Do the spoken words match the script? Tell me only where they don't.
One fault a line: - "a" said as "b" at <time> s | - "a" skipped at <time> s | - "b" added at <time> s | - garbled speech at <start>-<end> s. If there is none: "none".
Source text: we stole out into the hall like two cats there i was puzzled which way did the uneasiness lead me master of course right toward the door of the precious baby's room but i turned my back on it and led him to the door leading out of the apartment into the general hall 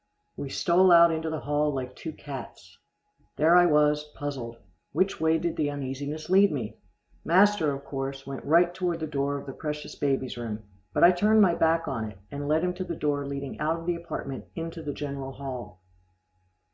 - "went" added at 8.2 s